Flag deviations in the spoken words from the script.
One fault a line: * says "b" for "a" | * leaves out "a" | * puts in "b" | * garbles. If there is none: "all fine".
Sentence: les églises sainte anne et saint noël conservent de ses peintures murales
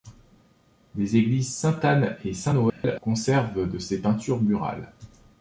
all fine